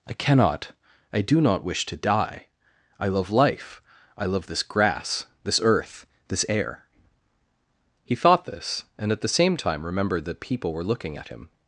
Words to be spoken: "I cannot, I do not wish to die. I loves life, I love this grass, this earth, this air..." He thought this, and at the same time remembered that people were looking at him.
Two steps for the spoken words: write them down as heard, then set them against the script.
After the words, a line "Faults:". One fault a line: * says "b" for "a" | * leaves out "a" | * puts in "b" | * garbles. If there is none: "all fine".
"I cannot, I do not wish to die. I love life, I love this grass, this earth, this air..." He thought this, and at the same time remembered that people were looking at him.
Faults:
* says "love" for "loves"